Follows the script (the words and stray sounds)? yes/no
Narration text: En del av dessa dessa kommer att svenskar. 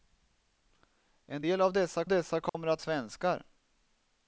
no